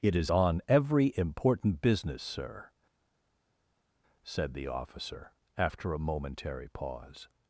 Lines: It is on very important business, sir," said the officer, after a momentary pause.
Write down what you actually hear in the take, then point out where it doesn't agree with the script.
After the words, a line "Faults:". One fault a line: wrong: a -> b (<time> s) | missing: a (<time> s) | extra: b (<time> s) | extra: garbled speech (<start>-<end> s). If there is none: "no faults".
It is on every important business, sir," said the officer, after a momentary pause.
Faults:
wrong: very -> every (0.7 s)